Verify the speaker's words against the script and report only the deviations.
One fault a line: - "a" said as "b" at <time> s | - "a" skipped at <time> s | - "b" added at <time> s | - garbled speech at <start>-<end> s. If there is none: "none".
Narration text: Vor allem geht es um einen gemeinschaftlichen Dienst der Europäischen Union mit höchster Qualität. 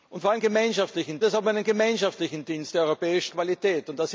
- "geht" said as "gemeinschaftlichen" at 0.4 s
- "Union mit höchster" skipped at 3.3 s